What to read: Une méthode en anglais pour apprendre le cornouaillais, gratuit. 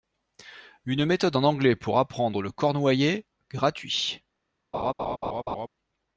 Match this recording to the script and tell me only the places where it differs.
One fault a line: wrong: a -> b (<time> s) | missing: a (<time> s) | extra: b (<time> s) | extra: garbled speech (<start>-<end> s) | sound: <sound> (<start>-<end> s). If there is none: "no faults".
sound: laugh (4.7-5.7 s)